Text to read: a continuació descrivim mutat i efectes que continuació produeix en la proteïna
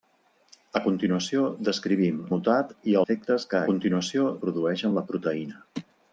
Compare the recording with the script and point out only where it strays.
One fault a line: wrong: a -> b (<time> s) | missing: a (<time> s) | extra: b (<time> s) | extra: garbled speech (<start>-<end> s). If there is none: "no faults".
no faults